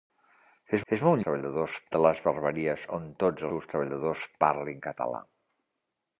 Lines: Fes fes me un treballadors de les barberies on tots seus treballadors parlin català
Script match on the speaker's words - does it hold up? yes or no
yes